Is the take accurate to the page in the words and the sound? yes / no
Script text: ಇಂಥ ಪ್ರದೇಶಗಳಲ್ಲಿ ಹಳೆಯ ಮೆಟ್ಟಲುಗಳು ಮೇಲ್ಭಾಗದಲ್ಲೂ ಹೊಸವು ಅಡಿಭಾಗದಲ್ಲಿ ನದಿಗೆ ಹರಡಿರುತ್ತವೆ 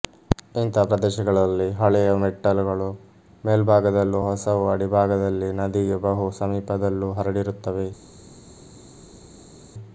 no